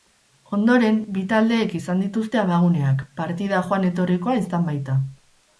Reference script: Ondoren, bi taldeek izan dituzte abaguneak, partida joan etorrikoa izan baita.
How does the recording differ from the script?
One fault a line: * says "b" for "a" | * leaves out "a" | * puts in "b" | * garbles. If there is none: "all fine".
all fine